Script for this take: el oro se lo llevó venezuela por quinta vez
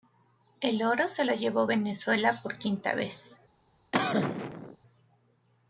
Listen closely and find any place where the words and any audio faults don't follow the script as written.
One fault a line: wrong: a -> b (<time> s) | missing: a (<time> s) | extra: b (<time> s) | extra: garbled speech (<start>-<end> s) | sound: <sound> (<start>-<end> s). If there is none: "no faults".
sound: cough (3.9-4.8 s)